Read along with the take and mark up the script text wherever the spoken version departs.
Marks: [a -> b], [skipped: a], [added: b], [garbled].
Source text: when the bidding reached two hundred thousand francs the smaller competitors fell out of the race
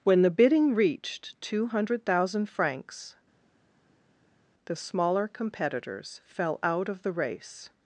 when the bidding reached two hundred thousand francs the smaller competitors fell out of the race